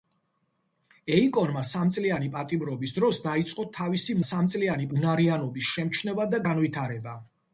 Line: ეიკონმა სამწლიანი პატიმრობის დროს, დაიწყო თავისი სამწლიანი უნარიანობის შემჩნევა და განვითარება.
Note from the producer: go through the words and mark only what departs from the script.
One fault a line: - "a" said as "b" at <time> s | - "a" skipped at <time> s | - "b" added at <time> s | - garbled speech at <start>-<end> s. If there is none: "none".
none